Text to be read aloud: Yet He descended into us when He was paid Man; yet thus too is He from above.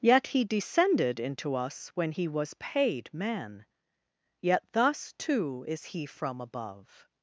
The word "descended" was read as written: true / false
true